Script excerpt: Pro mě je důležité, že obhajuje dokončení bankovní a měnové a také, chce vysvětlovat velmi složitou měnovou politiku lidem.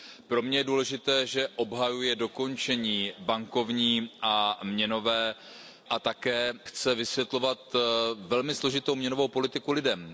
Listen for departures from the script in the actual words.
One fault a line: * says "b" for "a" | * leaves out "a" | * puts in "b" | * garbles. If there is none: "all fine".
all fine